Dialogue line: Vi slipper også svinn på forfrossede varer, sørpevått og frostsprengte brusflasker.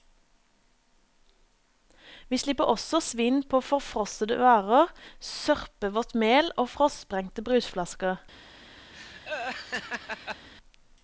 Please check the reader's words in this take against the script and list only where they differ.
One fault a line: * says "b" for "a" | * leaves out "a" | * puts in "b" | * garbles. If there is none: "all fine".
* puts in "mel"